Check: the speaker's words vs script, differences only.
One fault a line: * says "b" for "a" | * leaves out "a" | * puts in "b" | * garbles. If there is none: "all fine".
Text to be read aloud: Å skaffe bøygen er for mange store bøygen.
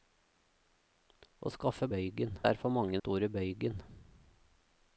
all fine